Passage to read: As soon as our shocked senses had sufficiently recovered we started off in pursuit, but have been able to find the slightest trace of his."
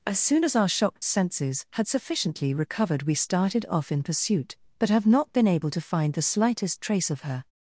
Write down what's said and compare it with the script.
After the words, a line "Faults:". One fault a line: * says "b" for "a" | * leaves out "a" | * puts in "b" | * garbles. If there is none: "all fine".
As soon as our shocked senses had sufficiently recovered we started off in pursuit, but have not been able to find the slightest trace of her."
Faults:
* puts in "not"
* says "her" for "his"